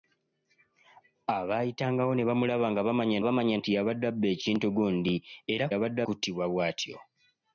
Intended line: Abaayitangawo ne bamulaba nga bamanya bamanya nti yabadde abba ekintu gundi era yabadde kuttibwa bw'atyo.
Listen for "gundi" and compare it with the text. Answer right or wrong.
right